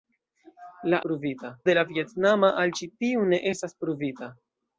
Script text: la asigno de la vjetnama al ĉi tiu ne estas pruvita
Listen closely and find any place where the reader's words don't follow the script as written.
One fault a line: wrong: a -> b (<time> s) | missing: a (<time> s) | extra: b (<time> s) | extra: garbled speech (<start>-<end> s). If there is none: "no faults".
wrong: asigno -> pruvita (1.1 s)